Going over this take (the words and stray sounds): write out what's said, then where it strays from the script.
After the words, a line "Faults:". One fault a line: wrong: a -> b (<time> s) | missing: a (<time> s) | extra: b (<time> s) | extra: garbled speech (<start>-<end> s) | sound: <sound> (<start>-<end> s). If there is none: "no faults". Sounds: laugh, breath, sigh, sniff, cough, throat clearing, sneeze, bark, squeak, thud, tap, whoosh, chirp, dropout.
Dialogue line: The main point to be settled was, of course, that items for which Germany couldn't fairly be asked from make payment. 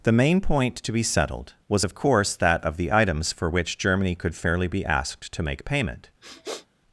The main point to be settled was, of course, that of the items for which Germany could fairly be asked to make payment.
Faults:
extra: of the (2.6 s)
wrong: couldn't -> could (4.1 s)
wrong: from -> to (5.3 s)
sound: sniff (6.2-6.7 s)